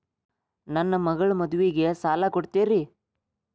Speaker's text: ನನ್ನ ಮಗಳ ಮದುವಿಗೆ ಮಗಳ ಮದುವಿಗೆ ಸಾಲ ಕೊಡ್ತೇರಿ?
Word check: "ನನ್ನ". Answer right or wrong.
right